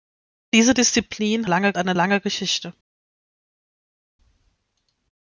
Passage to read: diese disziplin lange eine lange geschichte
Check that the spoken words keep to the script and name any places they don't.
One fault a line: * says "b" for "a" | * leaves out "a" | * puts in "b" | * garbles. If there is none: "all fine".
all fine